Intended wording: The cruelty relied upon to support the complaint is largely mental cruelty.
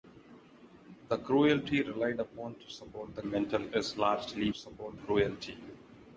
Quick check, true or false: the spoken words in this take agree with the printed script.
false